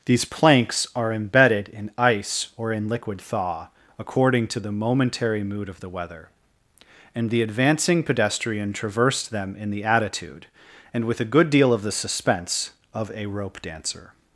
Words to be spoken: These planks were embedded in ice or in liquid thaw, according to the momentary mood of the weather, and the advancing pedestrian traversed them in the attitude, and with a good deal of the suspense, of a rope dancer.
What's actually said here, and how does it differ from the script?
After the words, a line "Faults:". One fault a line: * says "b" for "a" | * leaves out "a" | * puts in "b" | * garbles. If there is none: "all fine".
These planks are embedded in ice or in liquid thaw, according to the momentary mood of the weather, and the advancing pedestrian traversed them in the attitude, and with a good deal of the suspense, of a rope dancer.
Faults:
* says "are" for "were"